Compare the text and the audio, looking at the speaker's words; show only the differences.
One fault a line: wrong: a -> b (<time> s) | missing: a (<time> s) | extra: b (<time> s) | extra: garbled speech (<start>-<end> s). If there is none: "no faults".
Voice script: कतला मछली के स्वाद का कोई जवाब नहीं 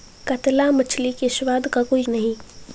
missing: जवाब (2.0 s)